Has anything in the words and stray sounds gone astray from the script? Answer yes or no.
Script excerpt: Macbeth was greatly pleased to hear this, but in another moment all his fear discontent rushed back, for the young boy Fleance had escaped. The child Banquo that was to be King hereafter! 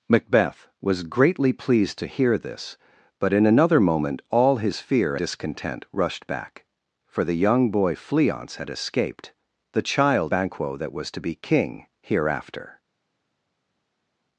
no